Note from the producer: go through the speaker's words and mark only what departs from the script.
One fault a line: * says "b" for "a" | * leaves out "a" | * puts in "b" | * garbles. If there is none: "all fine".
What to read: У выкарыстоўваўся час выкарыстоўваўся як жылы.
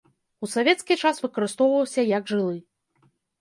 * says "савецкі" for "выкарыстоўваўся"